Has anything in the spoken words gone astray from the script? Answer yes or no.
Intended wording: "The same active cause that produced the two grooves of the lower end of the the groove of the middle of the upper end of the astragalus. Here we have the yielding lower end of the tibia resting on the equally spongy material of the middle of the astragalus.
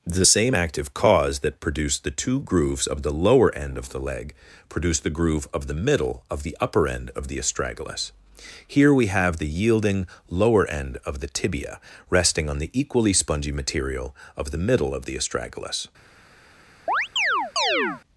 yes